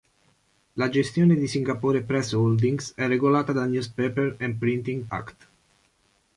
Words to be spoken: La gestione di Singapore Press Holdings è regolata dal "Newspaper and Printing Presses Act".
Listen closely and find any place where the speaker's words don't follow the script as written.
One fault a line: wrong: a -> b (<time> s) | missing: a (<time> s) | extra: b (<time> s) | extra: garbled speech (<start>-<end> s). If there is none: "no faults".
missing: Presses (5.0 s)